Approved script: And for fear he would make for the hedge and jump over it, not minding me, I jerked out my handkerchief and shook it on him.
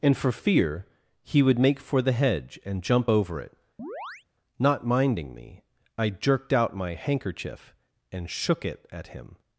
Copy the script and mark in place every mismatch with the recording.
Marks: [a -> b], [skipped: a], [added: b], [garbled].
And for fear he would make for the hedge and jump over it, not minding me, I jerked out my handkerchief and shook it [on -> at] him.